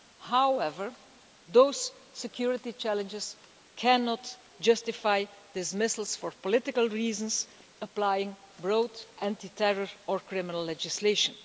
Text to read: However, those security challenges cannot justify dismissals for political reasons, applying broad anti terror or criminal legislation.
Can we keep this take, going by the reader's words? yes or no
yes